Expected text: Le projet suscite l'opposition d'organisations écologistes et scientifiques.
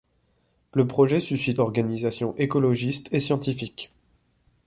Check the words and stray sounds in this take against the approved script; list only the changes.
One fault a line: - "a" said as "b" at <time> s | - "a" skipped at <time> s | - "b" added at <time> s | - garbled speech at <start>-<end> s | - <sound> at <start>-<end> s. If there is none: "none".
- "l'opposition" skipped at 1.6 s